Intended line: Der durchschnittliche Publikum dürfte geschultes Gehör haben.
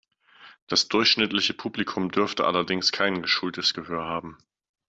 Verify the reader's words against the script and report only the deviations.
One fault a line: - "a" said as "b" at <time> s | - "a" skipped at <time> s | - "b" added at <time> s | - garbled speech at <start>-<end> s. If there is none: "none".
- "Der" said as "Das" at 0.7 s
- "allerdings kein" added at 2.5 s